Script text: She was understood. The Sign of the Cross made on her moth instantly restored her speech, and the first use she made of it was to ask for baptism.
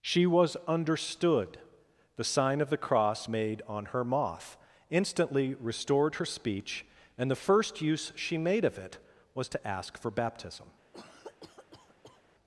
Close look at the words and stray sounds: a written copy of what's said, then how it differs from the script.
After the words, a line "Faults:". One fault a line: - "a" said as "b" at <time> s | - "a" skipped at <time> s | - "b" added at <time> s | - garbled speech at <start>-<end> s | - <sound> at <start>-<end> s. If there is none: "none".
She was understood. The Sign of the Cross made on her moth instantly restored her speech, and the first use she made of it was to ask for baptism.
Faults:
- cough at 10.9-12.2 s